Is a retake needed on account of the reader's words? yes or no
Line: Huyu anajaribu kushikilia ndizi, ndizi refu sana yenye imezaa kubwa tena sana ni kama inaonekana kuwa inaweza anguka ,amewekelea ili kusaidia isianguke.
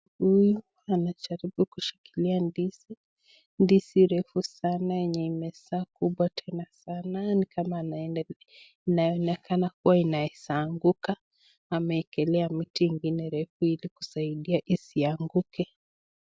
yes